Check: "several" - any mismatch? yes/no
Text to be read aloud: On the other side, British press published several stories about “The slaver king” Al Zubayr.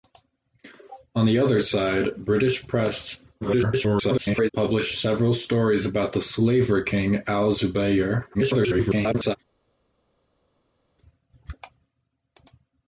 no